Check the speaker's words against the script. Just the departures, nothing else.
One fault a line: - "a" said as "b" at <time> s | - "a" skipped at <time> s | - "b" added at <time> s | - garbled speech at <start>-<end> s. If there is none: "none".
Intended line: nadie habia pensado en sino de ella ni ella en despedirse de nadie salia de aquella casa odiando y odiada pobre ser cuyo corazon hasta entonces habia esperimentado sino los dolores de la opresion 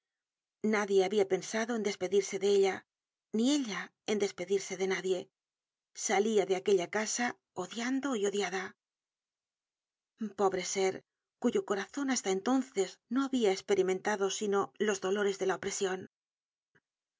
- "sino" said as "despedirse" at 1.9 s
- "no" added at 13.1 s